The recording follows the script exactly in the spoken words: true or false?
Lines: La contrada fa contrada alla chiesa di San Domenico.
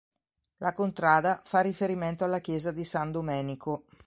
false